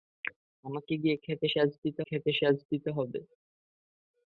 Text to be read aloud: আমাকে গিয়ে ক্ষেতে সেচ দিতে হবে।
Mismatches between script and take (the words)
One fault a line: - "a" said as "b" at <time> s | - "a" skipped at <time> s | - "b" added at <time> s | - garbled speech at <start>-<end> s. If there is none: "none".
- "ক্ষেতে সেচ দিতে" added at 2.0 s